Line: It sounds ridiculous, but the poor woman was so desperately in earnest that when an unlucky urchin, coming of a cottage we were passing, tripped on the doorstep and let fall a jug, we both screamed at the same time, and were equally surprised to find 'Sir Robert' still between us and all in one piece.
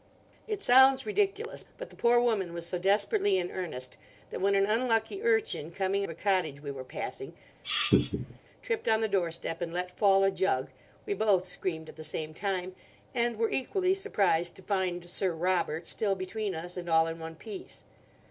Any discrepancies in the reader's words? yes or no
no